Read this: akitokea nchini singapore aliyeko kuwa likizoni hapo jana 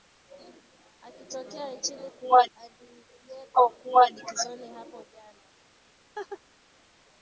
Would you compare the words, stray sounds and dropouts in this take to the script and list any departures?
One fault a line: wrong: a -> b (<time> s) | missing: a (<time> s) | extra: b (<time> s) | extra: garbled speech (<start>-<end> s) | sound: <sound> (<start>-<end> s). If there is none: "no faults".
wrong: singapore -> kuwa (2.1 s)
sound: laugh (6.2-6.4 s)